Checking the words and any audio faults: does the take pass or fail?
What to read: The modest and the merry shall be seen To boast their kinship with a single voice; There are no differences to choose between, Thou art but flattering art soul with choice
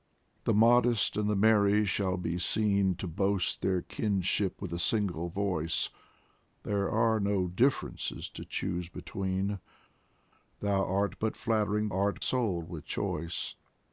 pass